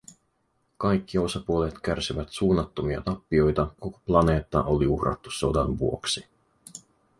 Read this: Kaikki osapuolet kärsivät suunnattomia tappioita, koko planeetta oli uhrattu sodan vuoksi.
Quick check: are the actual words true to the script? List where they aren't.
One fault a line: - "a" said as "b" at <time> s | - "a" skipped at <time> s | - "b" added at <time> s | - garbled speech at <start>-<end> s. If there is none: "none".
none